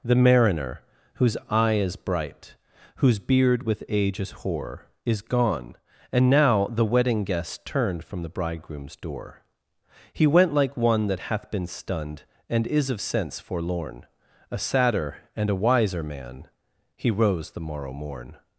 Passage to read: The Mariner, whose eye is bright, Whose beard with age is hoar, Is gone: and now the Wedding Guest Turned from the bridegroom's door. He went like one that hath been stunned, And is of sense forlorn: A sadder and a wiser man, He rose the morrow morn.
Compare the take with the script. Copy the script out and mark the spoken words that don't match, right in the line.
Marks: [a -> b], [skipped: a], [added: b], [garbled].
The Mariner, whose eye is bright, Whose beard with age is hoar, Is gone: and now the Wedding Guest Turned from the bridegroom's door. He went like one that hath been stunned, And is of sense forlorn: A sadder and a wiser man, He rose the morrow morn.